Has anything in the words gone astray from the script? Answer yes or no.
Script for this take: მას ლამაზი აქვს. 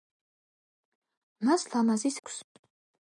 no